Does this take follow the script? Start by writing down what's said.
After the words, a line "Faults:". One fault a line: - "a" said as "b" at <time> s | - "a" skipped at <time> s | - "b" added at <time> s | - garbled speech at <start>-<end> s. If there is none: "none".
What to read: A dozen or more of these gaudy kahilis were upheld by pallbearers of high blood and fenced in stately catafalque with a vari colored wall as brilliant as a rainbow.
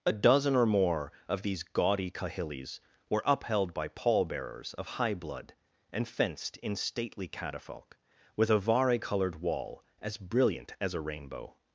A dozen or more of these gaudy kahilis were upheld by pallbearers of high blood and fenced in stately catafalque with a vari colored wall as brilliant as a rainbow.
Faults:
none